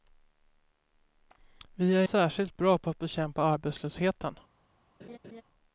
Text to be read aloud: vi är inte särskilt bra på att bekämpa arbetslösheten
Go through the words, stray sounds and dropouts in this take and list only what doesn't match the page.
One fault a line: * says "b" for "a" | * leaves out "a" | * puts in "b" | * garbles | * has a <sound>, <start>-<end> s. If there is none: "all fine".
* leaves out "inte"
* has a laugh, 5.0-5.4 s